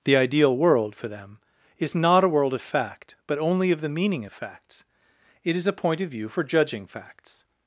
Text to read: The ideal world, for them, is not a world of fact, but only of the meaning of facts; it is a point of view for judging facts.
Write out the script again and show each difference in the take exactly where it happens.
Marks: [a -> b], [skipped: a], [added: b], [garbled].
The ideal world, for them, is not a world of fact, but only of the meaning of facts; it is a point of view for judging facts.